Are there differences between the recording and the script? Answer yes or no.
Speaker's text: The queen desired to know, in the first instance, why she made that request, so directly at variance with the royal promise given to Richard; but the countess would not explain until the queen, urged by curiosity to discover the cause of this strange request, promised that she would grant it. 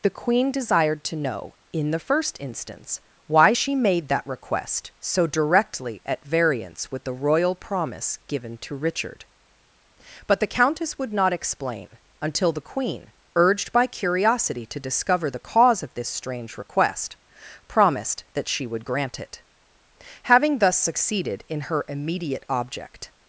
yes